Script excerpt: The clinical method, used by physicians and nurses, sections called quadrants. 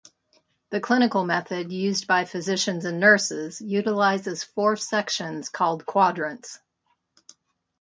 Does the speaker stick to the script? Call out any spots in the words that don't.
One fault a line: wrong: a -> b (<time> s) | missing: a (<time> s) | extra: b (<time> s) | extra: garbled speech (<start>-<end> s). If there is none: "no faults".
extra: utilizes four (3.6 s)